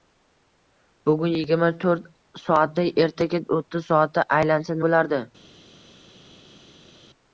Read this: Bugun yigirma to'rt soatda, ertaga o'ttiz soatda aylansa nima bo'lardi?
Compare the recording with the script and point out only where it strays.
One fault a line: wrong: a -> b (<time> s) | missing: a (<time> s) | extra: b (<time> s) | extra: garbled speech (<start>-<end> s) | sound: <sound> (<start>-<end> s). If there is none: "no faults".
missing: nima (4.8 s)